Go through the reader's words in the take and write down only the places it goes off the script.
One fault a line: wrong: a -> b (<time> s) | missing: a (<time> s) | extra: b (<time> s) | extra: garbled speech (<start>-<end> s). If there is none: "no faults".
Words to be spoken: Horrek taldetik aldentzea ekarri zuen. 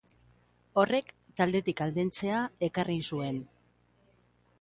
no faults